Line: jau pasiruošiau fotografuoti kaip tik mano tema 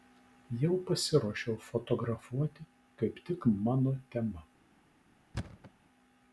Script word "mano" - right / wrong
right